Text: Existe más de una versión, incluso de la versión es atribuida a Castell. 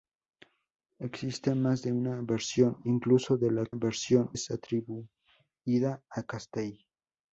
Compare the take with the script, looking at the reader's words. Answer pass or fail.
pass